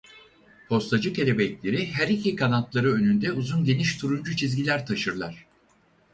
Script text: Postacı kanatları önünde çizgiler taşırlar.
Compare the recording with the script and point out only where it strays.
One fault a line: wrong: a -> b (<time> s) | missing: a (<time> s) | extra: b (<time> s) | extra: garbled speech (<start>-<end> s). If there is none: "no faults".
extra: kelebekleri her iki (1.1 s)
extra: uzun geniş turuncu (3.3 s)